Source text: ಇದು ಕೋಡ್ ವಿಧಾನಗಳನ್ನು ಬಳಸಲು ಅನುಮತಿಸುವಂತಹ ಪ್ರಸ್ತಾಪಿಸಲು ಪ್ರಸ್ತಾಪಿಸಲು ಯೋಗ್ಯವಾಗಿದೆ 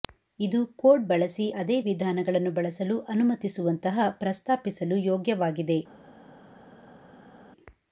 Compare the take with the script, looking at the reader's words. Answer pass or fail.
fail